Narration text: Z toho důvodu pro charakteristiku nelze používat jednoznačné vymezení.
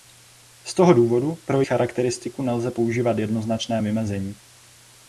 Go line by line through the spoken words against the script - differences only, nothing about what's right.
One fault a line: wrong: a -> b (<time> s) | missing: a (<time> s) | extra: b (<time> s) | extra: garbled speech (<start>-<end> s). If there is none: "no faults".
no faults